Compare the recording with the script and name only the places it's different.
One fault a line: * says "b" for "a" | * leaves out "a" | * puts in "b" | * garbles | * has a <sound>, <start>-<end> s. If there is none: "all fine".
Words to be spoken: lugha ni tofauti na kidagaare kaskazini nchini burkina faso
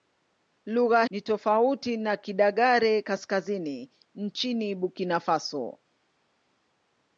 all fine